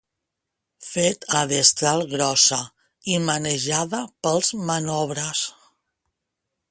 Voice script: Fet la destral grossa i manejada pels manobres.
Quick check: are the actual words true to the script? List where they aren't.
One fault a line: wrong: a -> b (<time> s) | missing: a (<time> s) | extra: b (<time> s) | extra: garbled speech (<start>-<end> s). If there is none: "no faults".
no faults